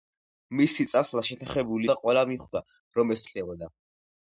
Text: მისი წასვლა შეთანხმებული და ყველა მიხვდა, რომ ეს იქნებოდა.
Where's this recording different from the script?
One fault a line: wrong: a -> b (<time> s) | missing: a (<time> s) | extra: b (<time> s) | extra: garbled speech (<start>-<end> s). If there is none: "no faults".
no faults